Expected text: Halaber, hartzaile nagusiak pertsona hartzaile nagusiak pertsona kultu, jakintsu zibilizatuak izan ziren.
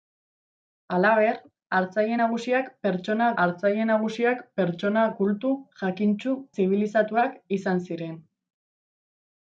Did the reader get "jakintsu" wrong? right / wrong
right